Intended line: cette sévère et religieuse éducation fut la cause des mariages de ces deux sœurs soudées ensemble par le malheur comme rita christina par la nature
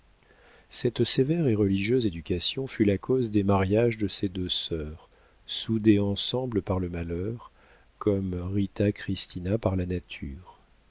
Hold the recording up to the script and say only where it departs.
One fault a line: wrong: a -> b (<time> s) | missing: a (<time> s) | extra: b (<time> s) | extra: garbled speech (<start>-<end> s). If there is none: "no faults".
no faults